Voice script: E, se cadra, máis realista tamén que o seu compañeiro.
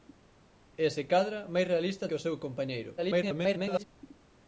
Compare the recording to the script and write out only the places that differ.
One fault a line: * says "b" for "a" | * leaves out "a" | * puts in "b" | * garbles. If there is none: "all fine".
* leaves out "tamén"
* garbles